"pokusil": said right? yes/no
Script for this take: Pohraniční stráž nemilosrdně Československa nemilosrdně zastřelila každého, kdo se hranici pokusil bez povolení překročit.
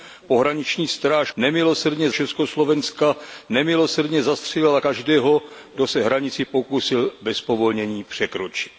yes